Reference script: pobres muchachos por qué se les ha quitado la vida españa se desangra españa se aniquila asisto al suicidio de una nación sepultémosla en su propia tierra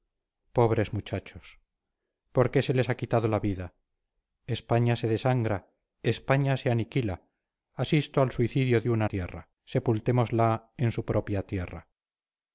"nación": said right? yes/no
no